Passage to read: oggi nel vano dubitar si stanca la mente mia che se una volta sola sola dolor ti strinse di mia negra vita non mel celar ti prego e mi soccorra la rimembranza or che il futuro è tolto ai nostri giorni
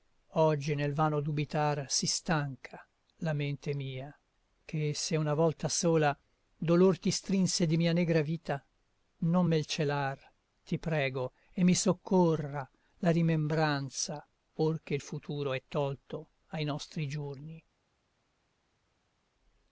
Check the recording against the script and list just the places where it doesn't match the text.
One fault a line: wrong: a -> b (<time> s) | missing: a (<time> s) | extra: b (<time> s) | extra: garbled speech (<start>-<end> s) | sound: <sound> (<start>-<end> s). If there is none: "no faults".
missing: sola (6.2 s)